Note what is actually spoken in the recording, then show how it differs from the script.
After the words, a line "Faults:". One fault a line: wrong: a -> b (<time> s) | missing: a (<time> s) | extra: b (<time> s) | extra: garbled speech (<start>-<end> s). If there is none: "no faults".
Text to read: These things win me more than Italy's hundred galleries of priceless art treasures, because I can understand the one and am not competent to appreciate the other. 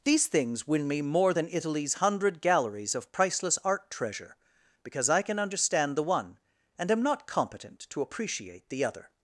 These things win me more than Italy's hundred galleries of priceless art treasure, because I can understand the one and am not competent to appreciate the other.
Faults:
wrong: treasures -> treasure (3.9 s)